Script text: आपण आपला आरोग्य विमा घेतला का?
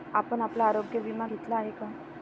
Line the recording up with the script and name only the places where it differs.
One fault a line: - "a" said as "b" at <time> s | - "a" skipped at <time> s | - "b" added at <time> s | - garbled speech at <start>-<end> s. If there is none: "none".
- "आहे" added at 1.6 s